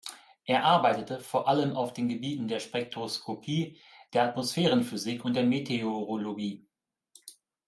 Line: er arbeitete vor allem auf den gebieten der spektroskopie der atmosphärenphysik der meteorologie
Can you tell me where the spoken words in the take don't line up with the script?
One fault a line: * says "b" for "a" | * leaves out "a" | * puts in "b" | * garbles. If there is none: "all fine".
* puts in "und"